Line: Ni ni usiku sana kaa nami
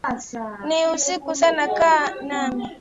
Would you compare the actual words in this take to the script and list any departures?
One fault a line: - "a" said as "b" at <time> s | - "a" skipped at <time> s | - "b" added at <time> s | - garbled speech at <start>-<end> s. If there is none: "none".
- "ni" skipped at 0.9 s